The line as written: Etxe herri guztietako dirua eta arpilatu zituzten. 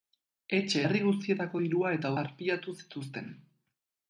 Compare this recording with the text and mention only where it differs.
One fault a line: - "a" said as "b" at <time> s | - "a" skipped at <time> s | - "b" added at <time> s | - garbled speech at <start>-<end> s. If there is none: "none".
none